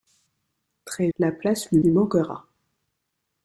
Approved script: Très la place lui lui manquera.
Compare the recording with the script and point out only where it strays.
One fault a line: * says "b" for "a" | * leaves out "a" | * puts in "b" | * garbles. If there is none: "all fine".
all fine